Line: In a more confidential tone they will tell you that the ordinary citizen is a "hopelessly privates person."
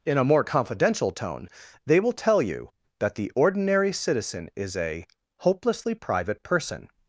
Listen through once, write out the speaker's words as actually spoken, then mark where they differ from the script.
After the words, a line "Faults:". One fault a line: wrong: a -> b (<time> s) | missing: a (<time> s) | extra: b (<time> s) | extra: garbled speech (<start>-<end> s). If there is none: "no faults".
In a more confidential tone they will tell you that the ordinary citizen is a "hopelessly private person."
Faults:
wrong: privates -> private (5.9 s)